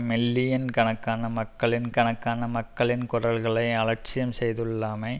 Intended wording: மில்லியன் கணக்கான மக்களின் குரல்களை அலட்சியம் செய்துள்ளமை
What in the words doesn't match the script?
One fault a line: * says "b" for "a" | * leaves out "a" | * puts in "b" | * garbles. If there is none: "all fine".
* puts in "கணக்கான மக்களின்"